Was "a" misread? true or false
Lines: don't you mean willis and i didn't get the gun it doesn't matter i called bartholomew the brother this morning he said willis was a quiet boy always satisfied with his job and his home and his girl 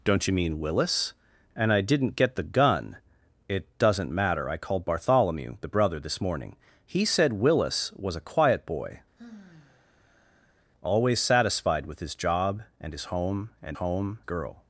false